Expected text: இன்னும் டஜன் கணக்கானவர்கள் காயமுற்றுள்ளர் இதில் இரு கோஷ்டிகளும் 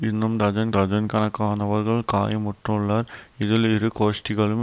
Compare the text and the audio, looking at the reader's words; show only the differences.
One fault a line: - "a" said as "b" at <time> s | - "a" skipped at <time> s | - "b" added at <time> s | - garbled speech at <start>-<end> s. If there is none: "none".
- "டஜன்" added at 0.7 s